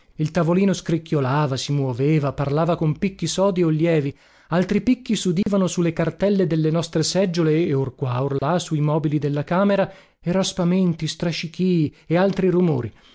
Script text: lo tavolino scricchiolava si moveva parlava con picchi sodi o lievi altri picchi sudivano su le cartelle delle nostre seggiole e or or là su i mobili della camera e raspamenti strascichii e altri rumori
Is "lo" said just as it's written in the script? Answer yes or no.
no